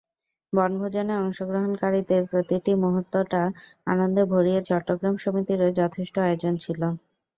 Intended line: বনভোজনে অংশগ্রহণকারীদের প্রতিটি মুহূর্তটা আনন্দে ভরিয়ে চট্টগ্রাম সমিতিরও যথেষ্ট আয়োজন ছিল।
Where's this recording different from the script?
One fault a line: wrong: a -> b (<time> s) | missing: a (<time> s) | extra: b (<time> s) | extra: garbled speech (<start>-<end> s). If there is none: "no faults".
no faults